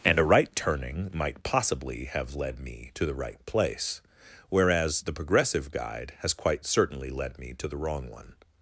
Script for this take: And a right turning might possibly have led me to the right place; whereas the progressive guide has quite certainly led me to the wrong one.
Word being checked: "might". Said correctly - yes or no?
yes